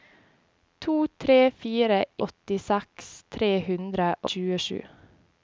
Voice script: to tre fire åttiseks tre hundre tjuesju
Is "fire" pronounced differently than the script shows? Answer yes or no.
no